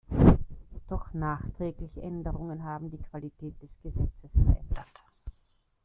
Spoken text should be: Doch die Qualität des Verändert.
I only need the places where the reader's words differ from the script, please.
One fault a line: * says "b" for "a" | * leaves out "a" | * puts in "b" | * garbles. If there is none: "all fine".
* puts in "nachträgliche Änderungen haben"
* puts in "Gesetzes"